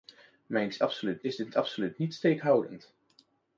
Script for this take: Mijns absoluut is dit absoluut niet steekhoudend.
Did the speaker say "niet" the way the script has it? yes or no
yes